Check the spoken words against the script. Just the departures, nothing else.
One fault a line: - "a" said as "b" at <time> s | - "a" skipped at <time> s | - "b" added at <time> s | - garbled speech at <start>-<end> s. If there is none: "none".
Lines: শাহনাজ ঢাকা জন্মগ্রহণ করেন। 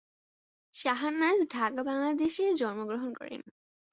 - "বাংলাদেশে" added at 1.8 s